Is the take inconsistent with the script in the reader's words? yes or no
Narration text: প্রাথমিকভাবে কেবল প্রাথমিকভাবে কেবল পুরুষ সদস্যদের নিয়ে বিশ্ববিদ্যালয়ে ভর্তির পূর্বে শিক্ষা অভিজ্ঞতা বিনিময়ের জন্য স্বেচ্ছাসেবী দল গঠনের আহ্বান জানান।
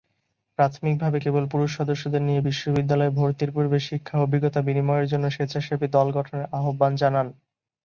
yes